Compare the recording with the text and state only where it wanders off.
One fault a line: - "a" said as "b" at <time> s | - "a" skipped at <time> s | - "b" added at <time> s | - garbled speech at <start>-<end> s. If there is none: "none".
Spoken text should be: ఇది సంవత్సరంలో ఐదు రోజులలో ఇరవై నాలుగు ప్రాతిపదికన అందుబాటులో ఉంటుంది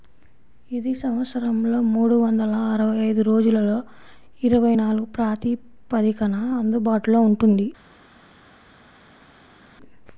- "మూడు వందల అరవై" added at 1.9 s